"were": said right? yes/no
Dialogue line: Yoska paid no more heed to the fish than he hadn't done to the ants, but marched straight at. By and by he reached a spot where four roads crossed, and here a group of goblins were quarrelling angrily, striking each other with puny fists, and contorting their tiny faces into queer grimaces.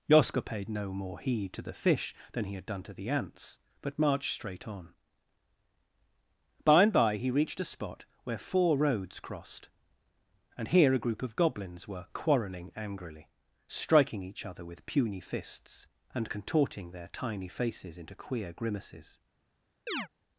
yes